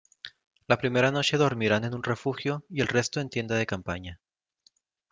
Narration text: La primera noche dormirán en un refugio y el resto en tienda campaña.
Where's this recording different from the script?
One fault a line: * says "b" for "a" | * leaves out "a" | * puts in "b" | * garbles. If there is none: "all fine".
* puts in "de"